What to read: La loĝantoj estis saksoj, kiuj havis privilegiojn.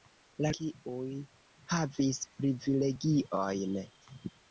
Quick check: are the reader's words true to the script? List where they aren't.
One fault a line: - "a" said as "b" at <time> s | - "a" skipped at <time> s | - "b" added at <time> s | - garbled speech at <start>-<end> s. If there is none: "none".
- "loĝantoj estis saksoj" skipped at 0.5 s